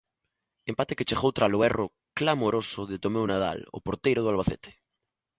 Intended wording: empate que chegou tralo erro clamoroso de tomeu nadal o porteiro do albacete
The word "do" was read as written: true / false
true